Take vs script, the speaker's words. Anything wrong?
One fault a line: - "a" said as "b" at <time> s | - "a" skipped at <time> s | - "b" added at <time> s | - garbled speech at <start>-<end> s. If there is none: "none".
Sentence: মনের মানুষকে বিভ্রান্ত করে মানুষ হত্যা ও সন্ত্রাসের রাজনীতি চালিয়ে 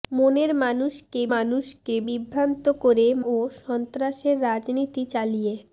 - "মানুষকে" added at 1.3 s
- "মানুষ হত্যা" skipped at 3.1 s